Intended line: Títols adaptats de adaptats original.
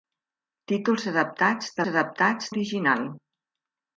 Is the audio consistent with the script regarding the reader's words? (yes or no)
yes